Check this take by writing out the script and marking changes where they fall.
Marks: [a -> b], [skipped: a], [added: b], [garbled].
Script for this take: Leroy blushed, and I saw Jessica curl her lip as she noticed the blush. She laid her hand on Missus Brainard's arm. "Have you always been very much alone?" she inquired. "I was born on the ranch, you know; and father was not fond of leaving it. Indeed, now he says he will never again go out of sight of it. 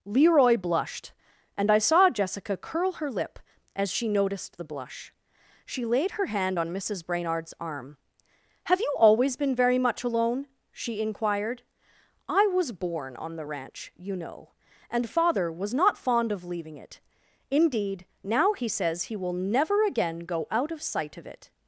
Leroy blushed, and I saw Jessica curl her lip as she noticed the blush. She laid her hand on Missus Brainard's arm. "Have you always been very much alone?" she inquired. "I was born on the ranch, you know; and father was not fond of leaving it. Indeed, now he says he will never again go out of sight of it.